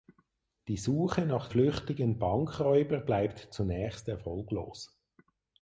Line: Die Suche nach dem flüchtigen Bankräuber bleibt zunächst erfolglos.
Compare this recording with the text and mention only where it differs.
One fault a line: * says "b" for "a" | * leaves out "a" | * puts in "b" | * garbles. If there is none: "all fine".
* leaves out "dem"